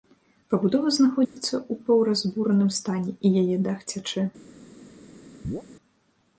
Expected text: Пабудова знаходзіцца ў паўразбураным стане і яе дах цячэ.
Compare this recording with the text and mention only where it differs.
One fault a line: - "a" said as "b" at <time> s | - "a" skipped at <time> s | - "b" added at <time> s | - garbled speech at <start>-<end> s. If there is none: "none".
none